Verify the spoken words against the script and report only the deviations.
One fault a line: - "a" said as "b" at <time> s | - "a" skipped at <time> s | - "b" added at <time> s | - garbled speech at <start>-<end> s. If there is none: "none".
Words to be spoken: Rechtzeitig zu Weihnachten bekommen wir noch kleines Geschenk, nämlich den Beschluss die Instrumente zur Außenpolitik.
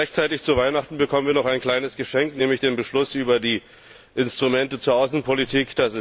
- "ein" added at 1.4 s
- "über" added at 3.1 s